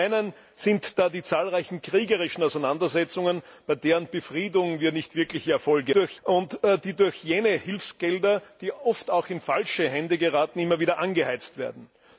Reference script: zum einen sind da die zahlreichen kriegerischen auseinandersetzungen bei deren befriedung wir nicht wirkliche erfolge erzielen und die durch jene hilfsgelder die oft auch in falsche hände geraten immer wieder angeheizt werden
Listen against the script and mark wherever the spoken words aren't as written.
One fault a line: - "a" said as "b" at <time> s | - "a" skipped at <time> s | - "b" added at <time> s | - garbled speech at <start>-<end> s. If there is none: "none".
- "erzielen" said as "durch" at 5.9 s